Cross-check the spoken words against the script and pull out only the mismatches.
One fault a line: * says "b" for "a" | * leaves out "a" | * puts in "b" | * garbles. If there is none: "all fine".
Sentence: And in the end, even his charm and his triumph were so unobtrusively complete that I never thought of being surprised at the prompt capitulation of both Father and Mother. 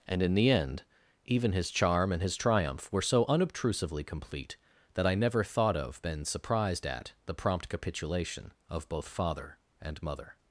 * says "been" for "being"